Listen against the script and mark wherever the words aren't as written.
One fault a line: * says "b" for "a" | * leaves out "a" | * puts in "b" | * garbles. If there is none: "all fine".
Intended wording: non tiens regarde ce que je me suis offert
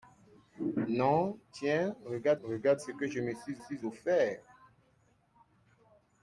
* puts in "regarde"
* puts in "suis"